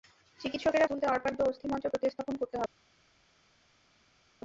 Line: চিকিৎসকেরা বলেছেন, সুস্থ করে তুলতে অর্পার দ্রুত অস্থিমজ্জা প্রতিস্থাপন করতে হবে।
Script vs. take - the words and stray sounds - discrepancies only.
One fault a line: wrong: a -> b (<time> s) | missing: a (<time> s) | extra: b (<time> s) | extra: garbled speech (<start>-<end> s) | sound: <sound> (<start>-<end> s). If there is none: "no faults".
missing: বলেছেন সুস্থ করে (0.9 s)
missing: দ্রুত (1.3 s)